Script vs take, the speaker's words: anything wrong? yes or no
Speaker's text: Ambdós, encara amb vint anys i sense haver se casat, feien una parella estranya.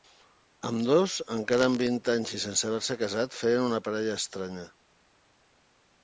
no